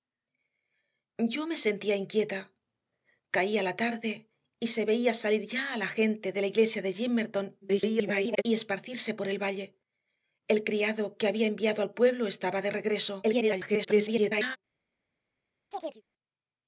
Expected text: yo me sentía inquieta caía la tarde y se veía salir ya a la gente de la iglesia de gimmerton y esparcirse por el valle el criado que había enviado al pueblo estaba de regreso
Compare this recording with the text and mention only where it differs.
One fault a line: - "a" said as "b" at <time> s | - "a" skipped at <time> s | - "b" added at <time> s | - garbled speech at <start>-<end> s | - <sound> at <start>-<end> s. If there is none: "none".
- garbled speech at 7.6-8.4 s
- garbled speech at 13.2-14.6 s
- chirp at 15.7-16.0 s